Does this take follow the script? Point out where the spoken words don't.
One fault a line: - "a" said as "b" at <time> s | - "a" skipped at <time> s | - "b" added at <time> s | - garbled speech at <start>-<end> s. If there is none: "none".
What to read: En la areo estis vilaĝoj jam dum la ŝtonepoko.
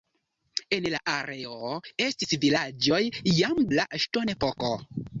- "dum" skipped at 3.6 s